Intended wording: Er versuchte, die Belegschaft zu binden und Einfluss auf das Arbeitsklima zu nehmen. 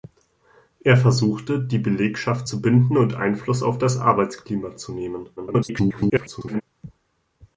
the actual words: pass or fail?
fail